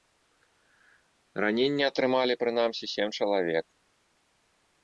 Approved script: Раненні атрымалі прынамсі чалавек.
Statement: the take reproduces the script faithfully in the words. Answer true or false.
false